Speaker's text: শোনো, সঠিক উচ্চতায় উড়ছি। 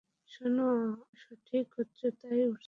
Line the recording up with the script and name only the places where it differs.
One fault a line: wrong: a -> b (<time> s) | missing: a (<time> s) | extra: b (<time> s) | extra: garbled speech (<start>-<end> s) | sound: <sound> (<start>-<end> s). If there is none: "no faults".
no faults